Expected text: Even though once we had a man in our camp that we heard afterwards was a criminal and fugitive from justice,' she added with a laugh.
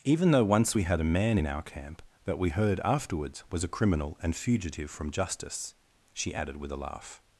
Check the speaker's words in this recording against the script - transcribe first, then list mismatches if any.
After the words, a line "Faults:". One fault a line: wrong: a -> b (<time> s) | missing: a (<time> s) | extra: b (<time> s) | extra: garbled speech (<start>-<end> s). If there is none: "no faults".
Even though once we had a man in our camp that we heard afterwards was a criminal and fugitive from justice,' she added with a laugh.
Faults:
no faults